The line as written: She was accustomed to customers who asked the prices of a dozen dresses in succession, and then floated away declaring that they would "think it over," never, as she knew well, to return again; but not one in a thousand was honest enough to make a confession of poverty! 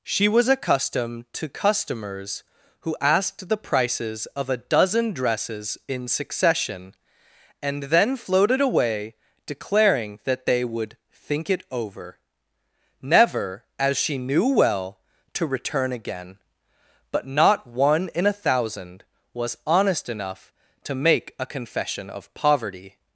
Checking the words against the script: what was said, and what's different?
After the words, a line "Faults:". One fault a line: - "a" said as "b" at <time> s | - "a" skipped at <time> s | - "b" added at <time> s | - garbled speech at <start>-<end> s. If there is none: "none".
She was accustomed to customers who asked the prices of a dozen dresses in succession, and then floated away declaring that they would "think it over," never, as she knew well, to return again; but not one in a thousand was honest enough to make a confession of poverty!
Faults:
none